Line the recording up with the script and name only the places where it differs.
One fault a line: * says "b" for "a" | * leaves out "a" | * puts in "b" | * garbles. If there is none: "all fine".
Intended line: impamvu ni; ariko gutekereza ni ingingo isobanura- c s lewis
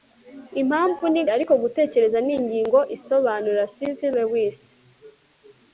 all fine